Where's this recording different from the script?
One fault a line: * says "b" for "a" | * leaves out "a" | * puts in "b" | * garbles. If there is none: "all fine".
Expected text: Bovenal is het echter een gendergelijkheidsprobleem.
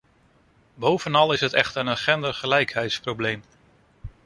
all fine